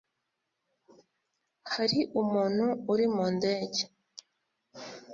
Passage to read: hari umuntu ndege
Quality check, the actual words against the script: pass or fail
fail